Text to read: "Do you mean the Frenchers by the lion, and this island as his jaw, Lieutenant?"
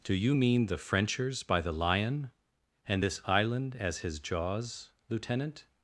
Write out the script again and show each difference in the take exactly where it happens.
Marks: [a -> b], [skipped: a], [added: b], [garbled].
"Do you mean the Frenchers by the lion, and this island as his [jaw, -> jaws] Lieutenant?"